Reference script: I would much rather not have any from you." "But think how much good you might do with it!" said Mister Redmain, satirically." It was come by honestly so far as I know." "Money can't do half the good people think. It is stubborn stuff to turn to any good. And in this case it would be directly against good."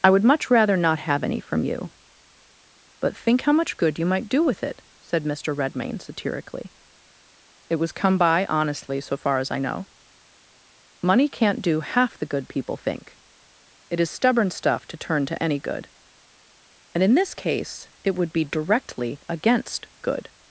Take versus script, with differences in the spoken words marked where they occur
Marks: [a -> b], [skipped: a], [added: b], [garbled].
I would much rather not have any from you." "But think how much good you might do with it!" said Mister Redmain, satirically." It was come by honestly so far as I know." "Money can't do half the good people think. It is stubborn stuff to turn to any good. And in this case it would be directly against good."